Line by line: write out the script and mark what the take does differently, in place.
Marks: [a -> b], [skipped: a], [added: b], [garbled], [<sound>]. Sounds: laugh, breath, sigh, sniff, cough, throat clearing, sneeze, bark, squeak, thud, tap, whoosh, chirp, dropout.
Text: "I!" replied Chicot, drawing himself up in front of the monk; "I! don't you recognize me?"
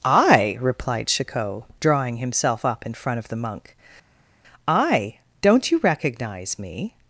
"I!" replied Chicot, drawing himself up in front of the monk; "I! don't you recognize me?"